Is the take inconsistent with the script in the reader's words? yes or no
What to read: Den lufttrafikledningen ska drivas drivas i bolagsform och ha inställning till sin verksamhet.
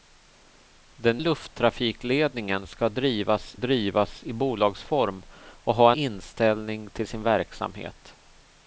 no